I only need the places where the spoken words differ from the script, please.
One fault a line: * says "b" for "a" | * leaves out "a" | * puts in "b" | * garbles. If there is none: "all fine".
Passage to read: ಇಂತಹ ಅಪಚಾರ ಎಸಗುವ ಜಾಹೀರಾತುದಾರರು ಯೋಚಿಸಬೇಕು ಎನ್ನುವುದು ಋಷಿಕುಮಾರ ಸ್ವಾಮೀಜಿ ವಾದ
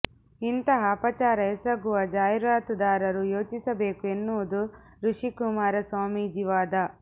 all fine